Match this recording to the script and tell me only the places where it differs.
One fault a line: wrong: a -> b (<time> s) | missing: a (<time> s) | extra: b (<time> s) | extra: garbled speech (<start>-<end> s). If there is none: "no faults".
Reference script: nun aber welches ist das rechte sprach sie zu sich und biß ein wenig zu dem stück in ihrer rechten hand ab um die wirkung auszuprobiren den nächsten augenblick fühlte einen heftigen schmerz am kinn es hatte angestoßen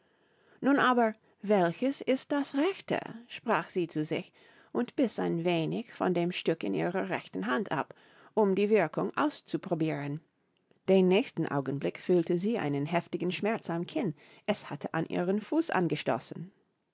wrong: zu -> von (5.9 s)
extra: sie (12.4 s)
extra: an ihren fuß (14.9 s)